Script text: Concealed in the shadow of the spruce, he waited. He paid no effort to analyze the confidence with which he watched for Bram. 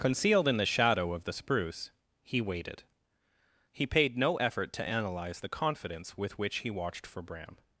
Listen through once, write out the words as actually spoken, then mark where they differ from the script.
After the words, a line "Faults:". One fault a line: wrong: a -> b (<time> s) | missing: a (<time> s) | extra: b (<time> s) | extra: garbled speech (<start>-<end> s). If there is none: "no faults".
Concealed in the shadow of the spruce, he waited. He paid no effort to analyze the confidence with which he watched for Bram.
Faults:
no faults